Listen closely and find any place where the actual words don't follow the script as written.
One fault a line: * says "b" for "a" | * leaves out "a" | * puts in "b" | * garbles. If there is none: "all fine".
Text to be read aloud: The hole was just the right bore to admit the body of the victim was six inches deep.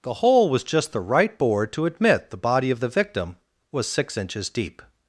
all fine